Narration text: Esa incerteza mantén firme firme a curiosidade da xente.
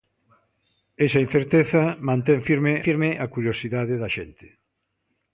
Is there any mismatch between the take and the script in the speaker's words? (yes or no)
no